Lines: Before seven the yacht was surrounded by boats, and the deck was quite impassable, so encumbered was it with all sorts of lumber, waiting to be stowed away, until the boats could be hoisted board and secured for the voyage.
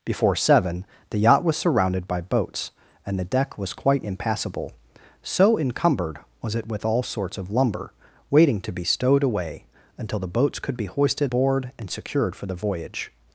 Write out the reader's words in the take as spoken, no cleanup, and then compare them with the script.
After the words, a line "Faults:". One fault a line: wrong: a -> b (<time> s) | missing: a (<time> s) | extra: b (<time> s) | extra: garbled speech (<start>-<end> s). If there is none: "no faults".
Before seven the yacht was surrounded by boats, and the deck was quite impassable, so encumbered was it with all sorts of lumber, waiting to be stowed away, until the boats could be hoisted board and secured for the voyage.
Faults:
no faults